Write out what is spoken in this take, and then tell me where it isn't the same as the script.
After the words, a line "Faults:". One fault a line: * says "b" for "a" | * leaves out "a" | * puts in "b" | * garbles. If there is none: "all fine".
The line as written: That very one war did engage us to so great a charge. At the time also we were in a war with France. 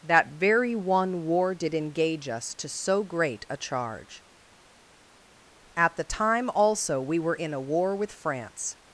That very one war did engage us to so great a charge. At the time also we were in a war with France.
Faults:
all fine